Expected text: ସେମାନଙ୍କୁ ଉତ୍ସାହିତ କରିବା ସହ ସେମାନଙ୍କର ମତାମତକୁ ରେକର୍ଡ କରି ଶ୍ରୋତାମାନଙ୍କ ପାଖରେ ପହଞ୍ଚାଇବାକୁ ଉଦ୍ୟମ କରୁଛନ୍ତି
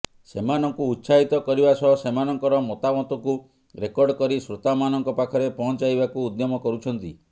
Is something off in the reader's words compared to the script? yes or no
no